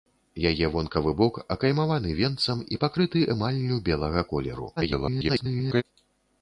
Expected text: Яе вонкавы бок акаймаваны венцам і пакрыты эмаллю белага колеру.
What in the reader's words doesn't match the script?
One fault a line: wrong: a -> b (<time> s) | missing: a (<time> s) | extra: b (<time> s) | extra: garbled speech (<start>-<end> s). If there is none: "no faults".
extra: garbled speech (4.8-5.8 s)